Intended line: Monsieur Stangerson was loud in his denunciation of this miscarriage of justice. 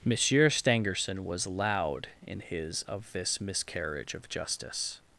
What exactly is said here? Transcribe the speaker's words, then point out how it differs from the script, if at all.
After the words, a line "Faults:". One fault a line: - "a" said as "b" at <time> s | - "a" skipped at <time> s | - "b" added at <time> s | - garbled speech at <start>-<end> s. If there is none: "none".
Monsieur Stangerson was loud in his of this miscarriage of justice.
Faults:
- "denunciation" skipped at 2.8 s